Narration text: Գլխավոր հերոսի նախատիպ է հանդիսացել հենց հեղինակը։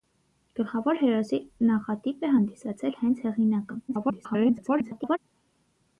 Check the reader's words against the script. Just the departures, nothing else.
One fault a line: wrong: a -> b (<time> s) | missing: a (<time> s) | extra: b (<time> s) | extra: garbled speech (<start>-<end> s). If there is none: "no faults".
extra: garbled speech (3.9-5.2 s)